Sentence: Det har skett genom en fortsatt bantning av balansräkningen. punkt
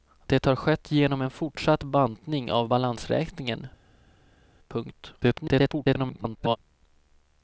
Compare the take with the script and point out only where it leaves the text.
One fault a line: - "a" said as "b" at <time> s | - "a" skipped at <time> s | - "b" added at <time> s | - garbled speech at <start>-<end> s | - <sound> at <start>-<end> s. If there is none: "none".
- garbled speech at 5.2-6.6 s